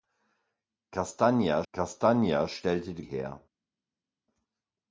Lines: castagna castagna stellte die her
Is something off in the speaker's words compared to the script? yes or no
no